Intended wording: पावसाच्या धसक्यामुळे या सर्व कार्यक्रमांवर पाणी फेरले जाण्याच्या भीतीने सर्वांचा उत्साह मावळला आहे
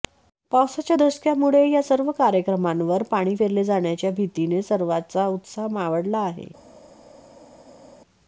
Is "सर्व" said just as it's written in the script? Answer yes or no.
yes